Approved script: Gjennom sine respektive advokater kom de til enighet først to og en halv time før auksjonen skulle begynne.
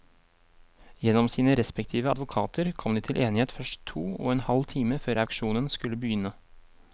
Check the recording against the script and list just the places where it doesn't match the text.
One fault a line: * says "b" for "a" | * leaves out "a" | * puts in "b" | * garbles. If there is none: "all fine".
all fine